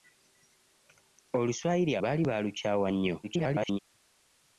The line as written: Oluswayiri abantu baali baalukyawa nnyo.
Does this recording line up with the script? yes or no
no